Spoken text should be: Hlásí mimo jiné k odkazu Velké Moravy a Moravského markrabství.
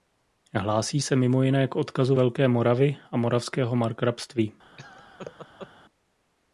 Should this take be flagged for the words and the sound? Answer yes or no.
yes